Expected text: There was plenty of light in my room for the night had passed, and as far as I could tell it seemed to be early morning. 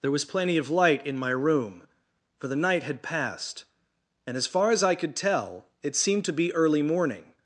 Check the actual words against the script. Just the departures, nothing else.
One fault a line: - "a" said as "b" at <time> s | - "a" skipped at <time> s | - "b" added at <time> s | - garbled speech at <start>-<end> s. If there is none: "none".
none